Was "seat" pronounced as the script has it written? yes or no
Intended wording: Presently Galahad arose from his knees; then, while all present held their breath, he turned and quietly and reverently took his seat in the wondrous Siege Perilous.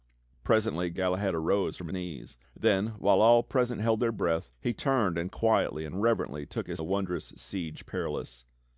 no